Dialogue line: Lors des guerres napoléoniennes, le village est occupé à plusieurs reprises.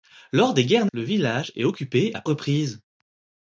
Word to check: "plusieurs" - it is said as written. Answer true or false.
false